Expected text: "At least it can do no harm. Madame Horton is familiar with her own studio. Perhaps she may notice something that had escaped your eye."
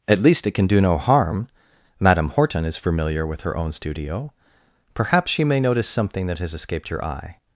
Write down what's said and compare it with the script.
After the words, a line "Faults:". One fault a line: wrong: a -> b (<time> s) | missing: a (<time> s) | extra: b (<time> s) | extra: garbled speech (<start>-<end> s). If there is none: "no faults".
"At least it can do no harm. Madame Horton is familiar with her own studio. Perhaps she may notice something that has escaped your eye."
Faults:
wrong: had -> has (6.4 s)